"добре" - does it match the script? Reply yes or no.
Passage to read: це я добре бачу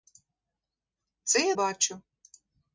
no